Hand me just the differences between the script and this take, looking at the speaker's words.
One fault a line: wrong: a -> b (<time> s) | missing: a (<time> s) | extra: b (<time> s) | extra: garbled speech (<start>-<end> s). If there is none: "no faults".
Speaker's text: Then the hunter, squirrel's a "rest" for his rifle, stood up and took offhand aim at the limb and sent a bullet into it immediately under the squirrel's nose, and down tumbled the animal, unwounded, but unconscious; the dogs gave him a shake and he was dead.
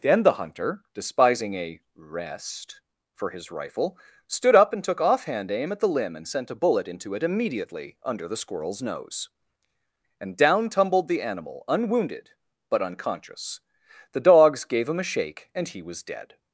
wrong: squirrel's -> despising (0.9 s)